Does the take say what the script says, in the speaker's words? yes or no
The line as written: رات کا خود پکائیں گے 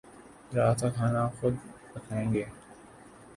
no